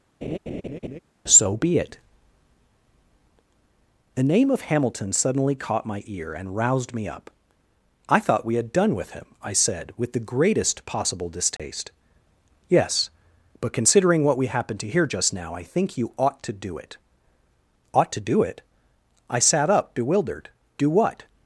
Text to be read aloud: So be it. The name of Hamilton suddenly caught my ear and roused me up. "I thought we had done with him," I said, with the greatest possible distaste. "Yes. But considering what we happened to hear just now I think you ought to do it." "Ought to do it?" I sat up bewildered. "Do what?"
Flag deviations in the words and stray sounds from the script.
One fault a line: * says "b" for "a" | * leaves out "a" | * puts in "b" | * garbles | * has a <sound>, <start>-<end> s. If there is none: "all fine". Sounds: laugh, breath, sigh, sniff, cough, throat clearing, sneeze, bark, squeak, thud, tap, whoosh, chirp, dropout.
* has a laugh, 0.2-1.0 s
* has a dropout, 11.6-11.6 s